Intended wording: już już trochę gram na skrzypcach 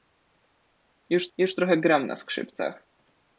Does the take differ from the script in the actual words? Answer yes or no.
no